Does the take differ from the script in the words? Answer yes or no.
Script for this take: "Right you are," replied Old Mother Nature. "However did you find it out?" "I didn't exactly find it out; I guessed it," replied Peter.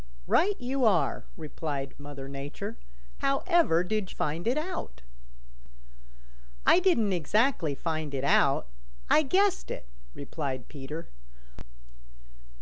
yes